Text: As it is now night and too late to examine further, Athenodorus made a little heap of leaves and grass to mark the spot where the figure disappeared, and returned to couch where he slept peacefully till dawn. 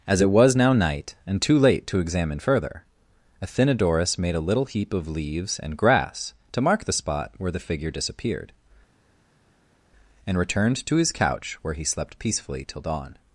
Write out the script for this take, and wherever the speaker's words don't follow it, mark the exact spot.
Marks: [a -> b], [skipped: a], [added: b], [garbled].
As it [is -> was] now night and too late to examine further, Athenodorus made a little heap of leaves and grass to mark the spot where the figure disappeared, and returned to [added: his] couch where he slept peacefully till dawn.